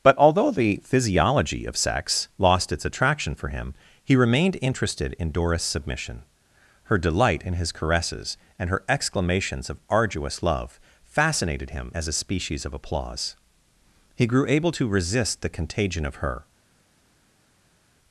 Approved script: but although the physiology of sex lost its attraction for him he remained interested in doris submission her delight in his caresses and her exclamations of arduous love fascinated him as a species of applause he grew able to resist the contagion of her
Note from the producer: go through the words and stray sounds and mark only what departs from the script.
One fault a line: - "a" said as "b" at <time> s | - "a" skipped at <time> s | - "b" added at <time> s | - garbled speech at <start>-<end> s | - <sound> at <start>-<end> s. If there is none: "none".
none